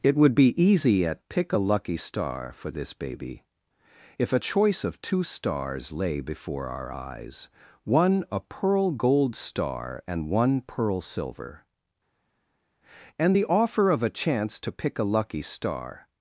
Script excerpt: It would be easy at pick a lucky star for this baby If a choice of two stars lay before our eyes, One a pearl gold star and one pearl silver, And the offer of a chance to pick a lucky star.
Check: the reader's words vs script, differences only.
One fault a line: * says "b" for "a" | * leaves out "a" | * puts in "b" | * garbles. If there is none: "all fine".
all fine